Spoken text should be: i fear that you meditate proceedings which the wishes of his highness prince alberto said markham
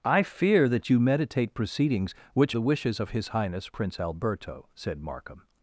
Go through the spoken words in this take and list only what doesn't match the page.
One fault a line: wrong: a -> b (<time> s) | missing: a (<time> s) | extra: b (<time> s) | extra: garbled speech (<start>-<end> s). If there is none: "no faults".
no faults